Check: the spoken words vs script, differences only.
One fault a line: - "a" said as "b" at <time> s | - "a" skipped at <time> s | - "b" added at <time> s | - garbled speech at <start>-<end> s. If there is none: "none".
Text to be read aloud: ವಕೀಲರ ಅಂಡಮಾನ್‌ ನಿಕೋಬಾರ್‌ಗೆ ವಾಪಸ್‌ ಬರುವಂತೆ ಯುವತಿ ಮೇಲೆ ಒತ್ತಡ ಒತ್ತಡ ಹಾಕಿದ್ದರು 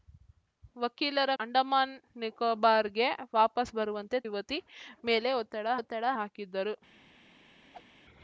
none